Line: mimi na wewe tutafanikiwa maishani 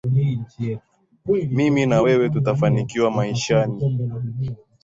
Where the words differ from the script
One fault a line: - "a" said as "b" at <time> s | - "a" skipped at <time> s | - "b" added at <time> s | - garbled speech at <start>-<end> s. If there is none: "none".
none